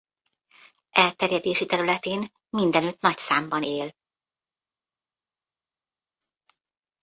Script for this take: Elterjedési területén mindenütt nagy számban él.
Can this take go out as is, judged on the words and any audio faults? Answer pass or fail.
pass